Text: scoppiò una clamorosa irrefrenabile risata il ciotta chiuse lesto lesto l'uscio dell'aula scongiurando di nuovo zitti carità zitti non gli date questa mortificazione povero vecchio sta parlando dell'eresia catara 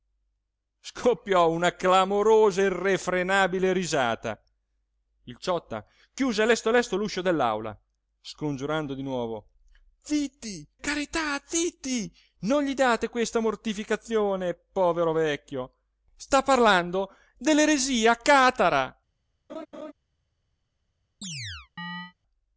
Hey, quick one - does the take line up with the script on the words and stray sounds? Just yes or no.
no